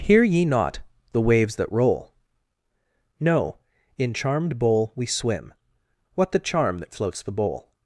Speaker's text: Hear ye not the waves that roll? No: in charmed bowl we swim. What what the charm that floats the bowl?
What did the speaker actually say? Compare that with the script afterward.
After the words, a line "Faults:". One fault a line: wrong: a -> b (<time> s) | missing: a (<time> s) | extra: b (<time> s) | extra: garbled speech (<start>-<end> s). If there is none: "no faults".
Hear ye not the waves that roll? No: in charmed bowl we swim. What the charm that floats the bowl?
Faults:
missing: what (6.3 s)